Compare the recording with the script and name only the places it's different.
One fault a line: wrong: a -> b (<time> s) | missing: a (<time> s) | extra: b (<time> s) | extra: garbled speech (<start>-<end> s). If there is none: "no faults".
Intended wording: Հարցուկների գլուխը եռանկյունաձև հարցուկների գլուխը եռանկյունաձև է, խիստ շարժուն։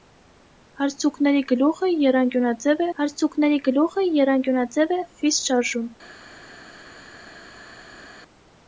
no faults